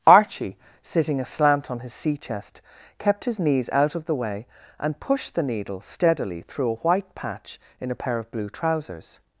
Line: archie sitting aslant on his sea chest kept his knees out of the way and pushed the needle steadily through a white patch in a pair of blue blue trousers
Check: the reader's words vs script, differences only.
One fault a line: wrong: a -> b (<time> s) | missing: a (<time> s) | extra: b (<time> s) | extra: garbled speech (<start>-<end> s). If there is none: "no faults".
missing: blue (8.5 s)